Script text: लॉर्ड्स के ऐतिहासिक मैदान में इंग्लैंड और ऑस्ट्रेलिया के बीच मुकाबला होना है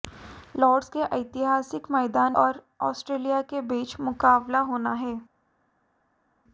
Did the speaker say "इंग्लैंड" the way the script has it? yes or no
no